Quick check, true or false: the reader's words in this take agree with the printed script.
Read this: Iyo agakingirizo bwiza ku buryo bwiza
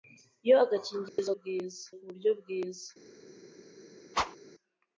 true